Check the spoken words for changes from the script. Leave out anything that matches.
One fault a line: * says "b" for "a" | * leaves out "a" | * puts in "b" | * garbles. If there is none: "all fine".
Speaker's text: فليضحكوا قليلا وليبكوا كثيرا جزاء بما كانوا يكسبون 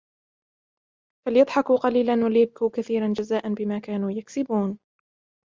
all fine